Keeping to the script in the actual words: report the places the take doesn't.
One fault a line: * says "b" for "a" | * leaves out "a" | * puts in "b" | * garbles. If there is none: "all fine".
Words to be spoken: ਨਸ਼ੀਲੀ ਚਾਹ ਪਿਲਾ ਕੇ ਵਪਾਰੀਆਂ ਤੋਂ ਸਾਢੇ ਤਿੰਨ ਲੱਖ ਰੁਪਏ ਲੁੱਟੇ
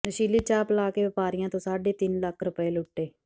all fine